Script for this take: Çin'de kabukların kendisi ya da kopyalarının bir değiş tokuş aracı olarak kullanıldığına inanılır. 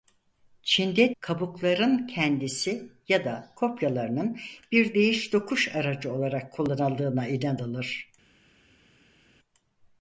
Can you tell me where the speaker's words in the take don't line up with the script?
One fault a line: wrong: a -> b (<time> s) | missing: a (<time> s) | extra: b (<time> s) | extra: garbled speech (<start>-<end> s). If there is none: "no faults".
no faults